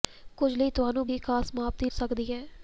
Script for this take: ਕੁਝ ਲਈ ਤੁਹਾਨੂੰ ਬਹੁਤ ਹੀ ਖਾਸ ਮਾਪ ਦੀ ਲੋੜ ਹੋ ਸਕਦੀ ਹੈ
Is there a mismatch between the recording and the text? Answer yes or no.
yes